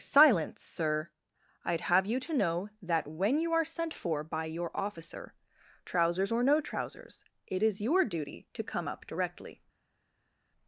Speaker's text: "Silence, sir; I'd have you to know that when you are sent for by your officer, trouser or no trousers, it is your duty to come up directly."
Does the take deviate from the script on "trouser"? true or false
true